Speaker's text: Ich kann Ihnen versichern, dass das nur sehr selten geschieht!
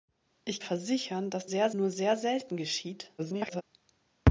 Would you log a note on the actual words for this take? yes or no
yes